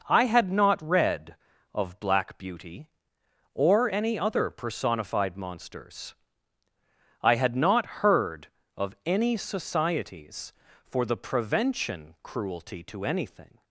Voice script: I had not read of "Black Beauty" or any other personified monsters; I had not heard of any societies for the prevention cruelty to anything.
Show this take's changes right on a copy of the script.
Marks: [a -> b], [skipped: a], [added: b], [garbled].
I had not read of "Black Beauty" or any other personified monsters; I had not heard of any societies for the prevention cruelty to anything.